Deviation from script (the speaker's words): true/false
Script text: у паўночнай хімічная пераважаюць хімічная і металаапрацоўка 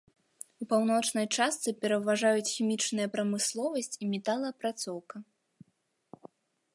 true